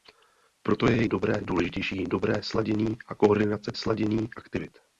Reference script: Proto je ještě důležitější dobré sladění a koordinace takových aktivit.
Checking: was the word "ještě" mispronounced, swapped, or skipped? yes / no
yes